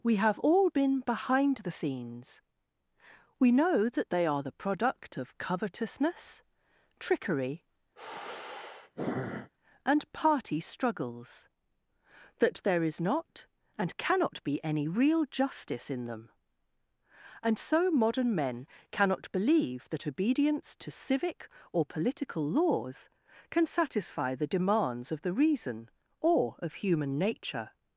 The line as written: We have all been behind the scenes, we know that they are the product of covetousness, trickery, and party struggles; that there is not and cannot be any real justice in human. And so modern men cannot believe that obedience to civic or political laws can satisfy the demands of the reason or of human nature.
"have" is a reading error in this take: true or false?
false